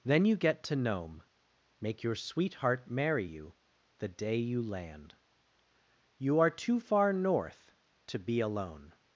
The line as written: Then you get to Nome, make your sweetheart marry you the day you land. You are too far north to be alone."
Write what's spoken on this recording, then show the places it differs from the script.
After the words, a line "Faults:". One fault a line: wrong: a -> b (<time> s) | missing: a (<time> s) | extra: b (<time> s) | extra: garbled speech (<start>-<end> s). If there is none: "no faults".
Then you get to Nome, make your sweetheart marry you the day you land. You are too far north to be alone."
Faults:
no faults